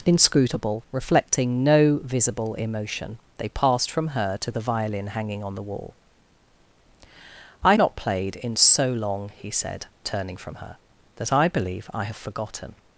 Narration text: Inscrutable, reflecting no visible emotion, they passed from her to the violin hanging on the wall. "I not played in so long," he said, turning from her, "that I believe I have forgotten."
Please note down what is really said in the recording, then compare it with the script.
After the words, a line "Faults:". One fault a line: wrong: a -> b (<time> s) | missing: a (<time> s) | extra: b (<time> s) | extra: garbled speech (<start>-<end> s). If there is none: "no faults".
Inscrutable, reflecting no visible emotion, they passed from her to the violin hanging on the wall. "I not played in so long," he said, turning from her, "that I believe I have forgotten."
Faults:
no faults